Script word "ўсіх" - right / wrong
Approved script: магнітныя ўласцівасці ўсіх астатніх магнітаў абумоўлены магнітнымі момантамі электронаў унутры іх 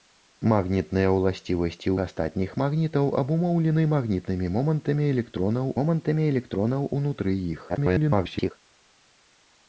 wrong